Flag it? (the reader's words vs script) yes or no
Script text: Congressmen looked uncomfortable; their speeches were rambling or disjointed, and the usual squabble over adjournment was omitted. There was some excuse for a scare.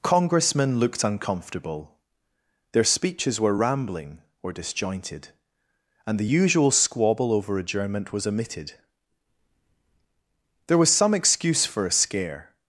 no